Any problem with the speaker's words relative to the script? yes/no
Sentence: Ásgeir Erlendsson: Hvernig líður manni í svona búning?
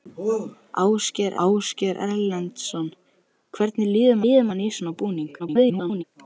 yes